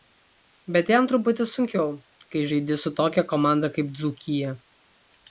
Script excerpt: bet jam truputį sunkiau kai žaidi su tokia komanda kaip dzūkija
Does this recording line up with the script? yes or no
yes